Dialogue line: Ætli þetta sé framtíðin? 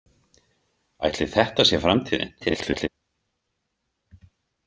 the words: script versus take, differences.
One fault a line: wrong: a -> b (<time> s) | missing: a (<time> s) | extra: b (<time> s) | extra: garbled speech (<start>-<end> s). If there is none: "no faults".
extra: garbled speech (2.4-2.9 s)